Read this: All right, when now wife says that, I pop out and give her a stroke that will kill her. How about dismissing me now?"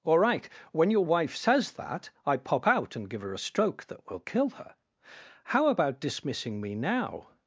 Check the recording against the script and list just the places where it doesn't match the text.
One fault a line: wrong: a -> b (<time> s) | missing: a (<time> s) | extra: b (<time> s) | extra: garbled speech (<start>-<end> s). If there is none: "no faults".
wrong: now -> your (0.9 s)